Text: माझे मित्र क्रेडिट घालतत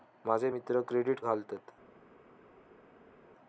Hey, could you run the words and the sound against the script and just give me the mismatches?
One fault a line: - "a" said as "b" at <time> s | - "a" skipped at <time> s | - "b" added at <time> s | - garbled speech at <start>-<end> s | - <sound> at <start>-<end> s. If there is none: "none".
none